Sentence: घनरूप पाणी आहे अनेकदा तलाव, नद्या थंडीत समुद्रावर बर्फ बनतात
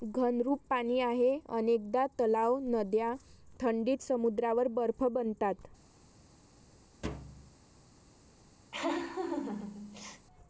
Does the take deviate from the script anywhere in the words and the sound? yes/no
yes